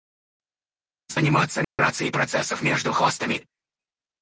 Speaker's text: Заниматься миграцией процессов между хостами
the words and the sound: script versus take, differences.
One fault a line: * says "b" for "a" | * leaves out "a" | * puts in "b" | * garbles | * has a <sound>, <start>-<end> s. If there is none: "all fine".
* has a dropout, 1.6-1.8 s